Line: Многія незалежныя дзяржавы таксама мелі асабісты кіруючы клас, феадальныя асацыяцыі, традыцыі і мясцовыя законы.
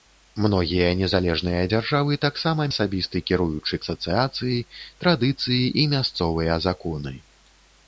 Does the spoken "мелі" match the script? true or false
false